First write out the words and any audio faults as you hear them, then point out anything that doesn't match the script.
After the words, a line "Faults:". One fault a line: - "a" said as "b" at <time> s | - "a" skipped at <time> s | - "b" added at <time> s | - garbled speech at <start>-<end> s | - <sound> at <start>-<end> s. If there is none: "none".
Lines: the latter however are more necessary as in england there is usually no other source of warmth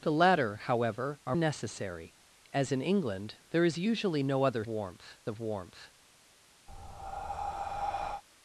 the latter however are necessary as in england there is usually no other warmth of warmth
Faults:
- "more" skipped at 1.4 s
- "source" said as "warmth" at 4.7 s
- breath at 6.7-8.2 s